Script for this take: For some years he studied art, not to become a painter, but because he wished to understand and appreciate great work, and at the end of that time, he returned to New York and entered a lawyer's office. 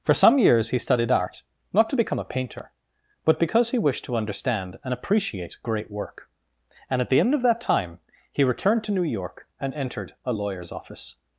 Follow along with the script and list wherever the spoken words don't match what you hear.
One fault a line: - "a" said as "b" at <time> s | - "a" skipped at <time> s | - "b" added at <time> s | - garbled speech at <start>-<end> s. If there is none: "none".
none